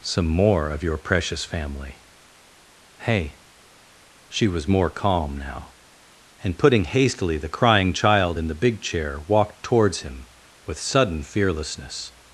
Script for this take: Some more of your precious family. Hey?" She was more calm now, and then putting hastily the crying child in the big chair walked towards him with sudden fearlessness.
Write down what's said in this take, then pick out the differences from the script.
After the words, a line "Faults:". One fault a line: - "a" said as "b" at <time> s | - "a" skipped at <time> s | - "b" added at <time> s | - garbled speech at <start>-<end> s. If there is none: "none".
Some more of your precious family. Hey?" She was more calm now, and putting hastily the crying child in the big chair walked towards him with sudden fearlessness.
Faults:
- "then" skipped at 6.6 s